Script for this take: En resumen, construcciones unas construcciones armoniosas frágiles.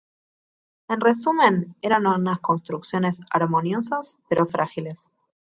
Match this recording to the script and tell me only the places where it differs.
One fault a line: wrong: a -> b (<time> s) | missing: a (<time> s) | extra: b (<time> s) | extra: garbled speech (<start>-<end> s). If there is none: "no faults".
wrong: construcciones -> eran (1.8 s)
extra: pero (4.3 s)